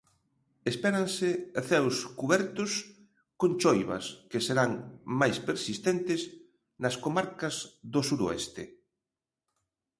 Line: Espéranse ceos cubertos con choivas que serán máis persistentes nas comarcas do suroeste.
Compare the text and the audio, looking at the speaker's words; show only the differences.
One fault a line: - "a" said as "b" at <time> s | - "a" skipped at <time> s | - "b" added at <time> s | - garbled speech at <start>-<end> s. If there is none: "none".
none